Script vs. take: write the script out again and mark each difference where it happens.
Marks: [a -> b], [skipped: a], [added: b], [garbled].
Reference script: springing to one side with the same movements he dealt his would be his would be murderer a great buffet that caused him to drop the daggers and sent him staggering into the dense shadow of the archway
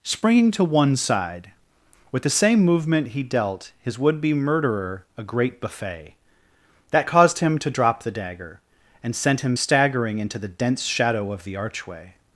springing to one side with the same [movements -> movement] he dealt his would be [skipped: his would be] murderer a great buffet that caused him to drop the [daggers -> dagger] and sent him staggering into the dense shadow of the archway